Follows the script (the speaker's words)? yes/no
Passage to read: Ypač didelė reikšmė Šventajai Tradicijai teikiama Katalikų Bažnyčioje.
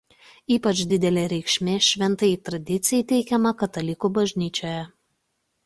yes